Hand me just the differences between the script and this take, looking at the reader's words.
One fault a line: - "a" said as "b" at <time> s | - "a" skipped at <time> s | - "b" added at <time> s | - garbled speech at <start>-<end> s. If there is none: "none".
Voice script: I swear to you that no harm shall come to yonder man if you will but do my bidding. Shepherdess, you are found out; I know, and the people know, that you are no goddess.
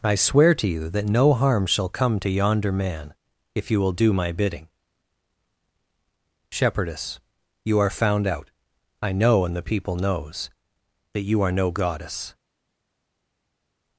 - "but" skipped at 3.9 s
- "know" said as "knows" at 9.9 s